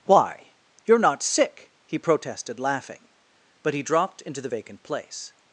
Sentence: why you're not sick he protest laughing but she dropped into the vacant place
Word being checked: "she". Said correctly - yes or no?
no